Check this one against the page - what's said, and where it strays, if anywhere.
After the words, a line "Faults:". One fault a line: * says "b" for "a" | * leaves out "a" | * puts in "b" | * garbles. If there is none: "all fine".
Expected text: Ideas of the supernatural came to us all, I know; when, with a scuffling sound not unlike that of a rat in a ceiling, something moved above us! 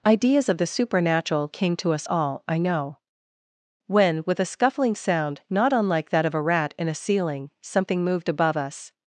Ideas of the supernatural came to us all, I know; when, with a scuffling sound not unlike that of a rat in a ceiling, something moved above us!
Faults:
all fine